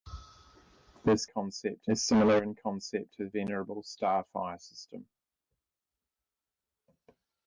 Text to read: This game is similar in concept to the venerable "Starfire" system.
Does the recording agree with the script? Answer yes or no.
no